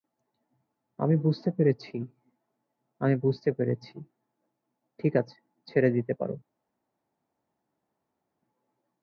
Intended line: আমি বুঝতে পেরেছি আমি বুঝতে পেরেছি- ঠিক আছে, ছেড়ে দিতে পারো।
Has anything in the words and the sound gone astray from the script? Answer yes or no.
no